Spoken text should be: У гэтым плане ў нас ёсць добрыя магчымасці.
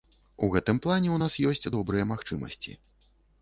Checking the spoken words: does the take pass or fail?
pass